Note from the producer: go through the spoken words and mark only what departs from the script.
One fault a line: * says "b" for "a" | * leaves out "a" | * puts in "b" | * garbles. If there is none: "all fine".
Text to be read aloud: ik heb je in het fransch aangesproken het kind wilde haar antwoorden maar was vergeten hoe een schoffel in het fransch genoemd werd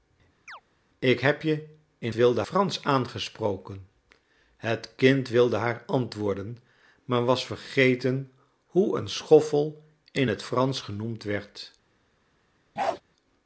* says "wilde" for "het"